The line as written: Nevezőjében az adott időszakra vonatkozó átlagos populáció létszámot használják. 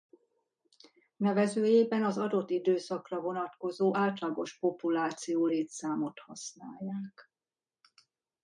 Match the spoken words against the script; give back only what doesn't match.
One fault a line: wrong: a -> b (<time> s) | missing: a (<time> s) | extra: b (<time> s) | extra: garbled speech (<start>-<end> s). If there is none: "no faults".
no faults